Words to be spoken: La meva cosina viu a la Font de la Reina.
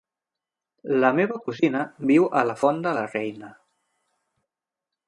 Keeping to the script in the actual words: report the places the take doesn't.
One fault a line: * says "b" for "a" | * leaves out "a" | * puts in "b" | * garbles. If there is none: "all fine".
all fine